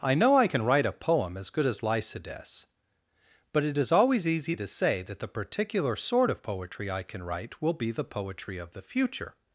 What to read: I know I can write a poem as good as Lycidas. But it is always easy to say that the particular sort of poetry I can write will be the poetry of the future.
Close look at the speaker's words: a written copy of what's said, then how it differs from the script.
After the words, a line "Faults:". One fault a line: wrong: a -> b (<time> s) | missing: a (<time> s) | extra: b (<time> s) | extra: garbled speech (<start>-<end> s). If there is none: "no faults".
I know I can write a poem as good as Lycidas. But it is always easy to say that the particular sort of poetry I can write will be the poetry of the future.
Faults:
no faults